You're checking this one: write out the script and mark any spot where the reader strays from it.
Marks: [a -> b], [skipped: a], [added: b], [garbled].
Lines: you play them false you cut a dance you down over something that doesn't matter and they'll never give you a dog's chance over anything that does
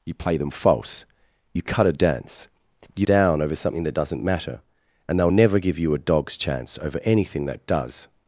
you play them false you cut a dance you down over something that doesn't matter and they'll never give you a dog's chance over anything that does